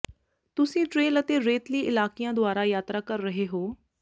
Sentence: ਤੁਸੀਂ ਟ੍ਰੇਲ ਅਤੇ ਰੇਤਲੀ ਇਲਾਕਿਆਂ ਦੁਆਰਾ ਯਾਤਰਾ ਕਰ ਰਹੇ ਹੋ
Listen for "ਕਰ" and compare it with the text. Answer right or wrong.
right